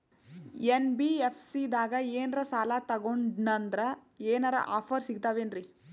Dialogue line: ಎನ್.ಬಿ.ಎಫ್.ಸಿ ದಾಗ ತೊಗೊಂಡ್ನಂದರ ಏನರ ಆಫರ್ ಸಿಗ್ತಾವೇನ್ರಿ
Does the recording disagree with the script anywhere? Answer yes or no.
yes